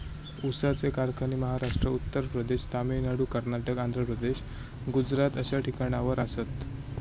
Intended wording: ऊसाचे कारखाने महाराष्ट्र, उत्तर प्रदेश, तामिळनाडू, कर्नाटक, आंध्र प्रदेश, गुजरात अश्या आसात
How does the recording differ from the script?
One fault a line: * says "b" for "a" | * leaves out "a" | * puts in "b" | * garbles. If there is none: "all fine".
* puts in "ठिकाणावर"